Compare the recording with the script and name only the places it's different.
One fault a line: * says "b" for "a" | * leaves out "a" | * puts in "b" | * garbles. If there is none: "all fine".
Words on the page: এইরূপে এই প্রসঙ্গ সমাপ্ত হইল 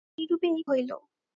* leaves out "প্রসঙ্গ সমাপ্ত"